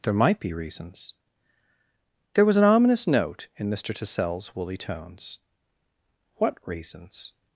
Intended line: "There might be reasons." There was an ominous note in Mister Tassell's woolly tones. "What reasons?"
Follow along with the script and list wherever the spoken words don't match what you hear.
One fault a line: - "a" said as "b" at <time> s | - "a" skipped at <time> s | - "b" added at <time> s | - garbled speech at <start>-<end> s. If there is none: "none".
none